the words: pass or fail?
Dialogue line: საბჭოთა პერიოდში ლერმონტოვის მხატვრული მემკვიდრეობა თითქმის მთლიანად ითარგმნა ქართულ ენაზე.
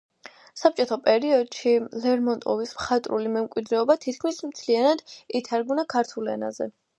pass